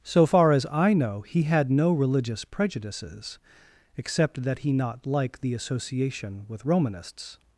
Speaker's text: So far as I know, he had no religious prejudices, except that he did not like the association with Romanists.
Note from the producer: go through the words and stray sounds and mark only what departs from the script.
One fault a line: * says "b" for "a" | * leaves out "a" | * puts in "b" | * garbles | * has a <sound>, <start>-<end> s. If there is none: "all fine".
* leaves out "did"